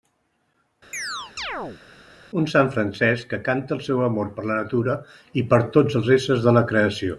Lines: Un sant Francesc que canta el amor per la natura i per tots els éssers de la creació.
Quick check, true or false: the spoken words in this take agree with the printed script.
false